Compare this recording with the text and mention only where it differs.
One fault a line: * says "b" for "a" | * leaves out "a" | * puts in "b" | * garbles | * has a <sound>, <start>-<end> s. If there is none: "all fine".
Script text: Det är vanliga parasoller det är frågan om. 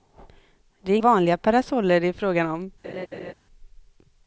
* has a laugh, 2.8-3.3 s